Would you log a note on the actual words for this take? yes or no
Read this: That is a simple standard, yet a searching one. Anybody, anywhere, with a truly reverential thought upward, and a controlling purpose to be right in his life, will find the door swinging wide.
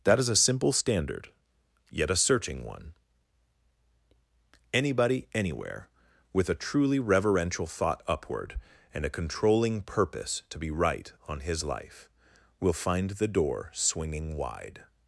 yes